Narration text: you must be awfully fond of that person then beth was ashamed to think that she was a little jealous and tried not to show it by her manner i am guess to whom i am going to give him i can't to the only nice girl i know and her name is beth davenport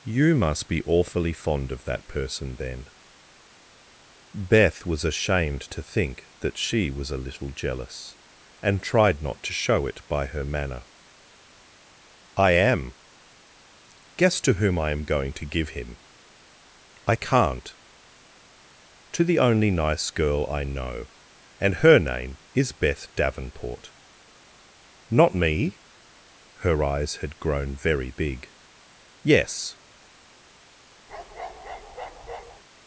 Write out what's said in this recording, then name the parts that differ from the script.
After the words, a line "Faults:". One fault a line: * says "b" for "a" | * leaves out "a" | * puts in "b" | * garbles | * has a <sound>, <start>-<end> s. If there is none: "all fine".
you must be awfully fond of that person then beth was ashamed to think that she was a little jealous and tried not to show it by her manner i am guess to whom i am going to give him i can't to the only nice girl i know and her name is beth davenport not me her eyes had grown very big yes
Faults:
* puts in "not me her eyes had grown very big yes"
* has a bark, 31.1-32.6 s